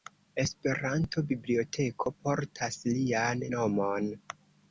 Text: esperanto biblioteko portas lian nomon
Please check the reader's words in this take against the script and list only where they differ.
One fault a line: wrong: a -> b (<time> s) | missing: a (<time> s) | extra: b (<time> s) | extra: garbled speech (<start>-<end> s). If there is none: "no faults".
no faults